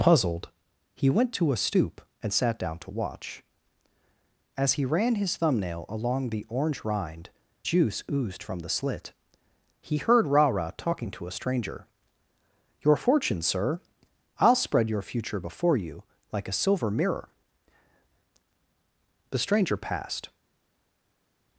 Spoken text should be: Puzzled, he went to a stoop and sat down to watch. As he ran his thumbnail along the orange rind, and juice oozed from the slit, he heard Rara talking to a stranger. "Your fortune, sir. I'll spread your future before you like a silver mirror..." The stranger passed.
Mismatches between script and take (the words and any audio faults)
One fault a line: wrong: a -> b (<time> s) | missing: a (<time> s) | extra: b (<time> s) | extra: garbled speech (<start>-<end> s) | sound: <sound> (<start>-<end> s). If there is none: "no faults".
missing: and (7.3 s)